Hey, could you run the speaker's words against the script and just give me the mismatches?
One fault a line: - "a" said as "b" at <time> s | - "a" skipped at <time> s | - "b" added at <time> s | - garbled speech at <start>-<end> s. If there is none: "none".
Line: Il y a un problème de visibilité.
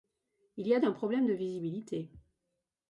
none